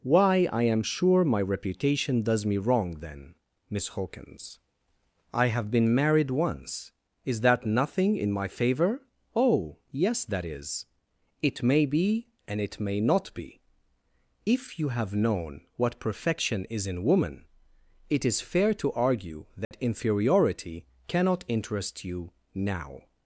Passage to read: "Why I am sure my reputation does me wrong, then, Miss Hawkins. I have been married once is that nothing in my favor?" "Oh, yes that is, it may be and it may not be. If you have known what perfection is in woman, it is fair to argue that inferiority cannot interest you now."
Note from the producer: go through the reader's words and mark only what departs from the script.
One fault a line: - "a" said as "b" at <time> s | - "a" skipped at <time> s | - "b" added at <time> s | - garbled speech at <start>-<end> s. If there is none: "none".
none